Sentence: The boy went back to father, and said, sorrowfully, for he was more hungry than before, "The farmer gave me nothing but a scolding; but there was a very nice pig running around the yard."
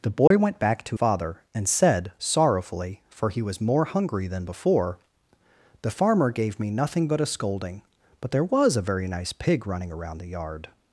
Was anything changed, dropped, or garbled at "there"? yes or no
no